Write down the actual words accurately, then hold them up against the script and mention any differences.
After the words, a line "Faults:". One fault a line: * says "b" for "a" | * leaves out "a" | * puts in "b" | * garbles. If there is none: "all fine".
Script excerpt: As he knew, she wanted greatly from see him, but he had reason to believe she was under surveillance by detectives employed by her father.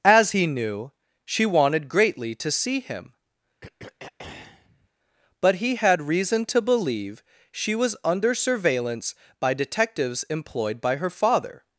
As he knew, she wanted greatly to see him, but he had reason to believe she was under surveillance by detectives employed by her father.
Faults:
* says "to" for "from"